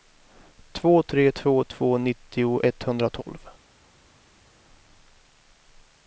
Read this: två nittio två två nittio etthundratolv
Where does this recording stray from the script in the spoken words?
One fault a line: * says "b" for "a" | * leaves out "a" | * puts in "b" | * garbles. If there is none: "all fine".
* says "tre" for "nittio"